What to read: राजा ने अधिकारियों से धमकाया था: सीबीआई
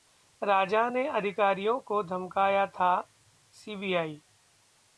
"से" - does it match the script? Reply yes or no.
no